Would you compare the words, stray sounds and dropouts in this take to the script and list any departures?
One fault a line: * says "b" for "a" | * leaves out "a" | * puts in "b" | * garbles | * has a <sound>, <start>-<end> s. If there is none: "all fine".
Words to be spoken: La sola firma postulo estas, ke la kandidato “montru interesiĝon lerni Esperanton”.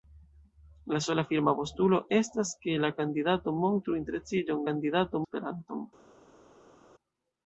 * says "kandidato" for "lerni"